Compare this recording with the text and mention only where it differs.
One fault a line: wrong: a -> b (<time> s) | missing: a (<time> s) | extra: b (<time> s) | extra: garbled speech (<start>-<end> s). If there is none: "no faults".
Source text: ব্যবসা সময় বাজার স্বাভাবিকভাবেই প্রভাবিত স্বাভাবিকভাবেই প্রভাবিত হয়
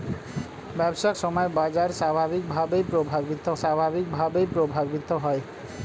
no faults